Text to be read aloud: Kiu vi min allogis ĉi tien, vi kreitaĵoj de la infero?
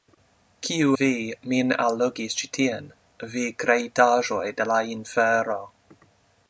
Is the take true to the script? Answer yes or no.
yes